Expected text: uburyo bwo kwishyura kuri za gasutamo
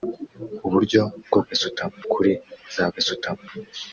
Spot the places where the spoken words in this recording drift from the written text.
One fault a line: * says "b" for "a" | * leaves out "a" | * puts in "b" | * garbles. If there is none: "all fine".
* says "gasutamo" for "kwishyura"